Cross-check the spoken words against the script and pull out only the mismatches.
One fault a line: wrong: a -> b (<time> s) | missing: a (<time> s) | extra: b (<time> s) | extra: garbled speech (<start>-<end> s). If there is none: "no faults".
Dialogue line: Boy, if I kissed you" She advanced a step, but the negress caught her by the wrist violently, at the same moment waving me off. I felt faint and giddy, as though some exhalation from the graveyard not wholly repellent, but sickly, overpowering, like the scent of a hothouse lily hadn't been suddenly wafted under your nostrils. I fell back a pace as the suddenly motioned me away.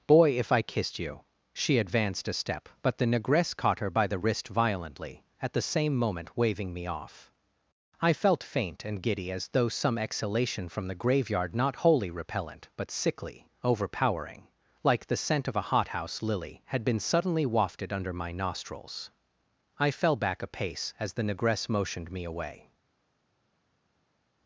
wrong: hadn't -> had (16.7 s)
wrong: your -> my (18.1 s)
wrong: suddenly -> negress (21.2 s)